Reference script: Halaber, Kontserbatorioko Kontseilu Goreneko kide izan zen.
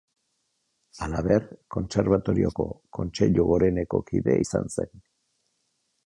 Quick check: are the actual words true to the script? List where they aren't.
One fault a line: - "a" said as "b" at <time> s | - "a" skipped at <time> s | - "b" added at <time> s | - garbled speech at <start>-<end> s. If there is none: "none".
none